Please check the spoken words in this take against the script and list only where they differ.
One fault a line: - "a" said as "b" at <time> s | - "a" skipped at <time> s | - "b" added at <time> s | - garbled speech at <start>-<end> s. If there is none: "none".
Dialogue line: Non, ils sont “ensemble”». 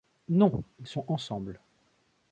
none